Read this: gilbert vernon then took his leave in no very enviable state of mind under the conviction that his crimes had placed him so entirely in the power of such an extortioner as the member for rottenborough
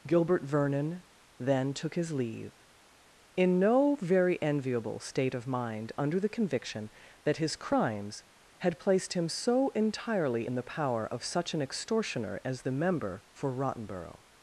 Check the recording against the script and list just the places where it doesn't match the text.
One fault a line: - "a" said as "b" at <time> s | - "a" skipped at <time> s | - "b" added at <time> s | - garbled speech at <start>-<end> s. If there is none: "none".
none